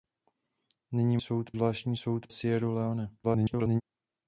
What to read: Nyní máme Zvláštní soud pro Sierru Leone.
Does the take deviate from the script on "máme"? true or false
true